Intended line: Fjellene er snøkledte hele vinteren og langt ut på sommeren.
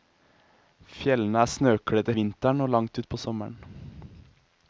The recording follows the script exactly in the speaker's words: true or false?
false